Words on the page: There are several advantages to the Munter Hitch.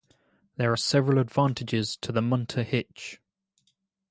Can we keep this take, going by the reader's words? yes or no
yes